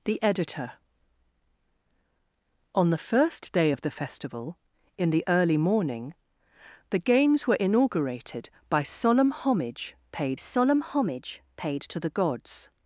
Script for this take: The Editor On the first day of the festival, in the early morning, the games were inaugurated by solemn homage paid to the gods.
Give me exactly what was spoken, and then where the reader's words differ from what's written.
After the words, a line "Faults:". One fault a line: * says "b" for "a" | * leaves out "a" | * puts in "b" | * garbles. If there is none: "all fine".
The Editor On the first day of the festival, in the early morning, the games were inaugurated by solemn homage paid solemn homage paid to the gods.
Faults:
* puts in "solemn homage paid"